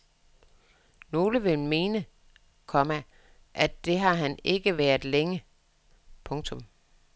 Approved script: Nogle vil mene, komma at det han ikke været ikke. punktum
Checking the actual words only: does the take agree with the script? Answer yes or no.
no